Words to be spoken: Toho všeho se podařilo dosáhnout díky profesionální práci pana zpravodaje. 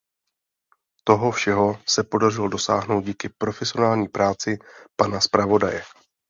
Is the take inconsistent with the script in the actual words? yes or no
no